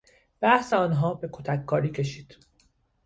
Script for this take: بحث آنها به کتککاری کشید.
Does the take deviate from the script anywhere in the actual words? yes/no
no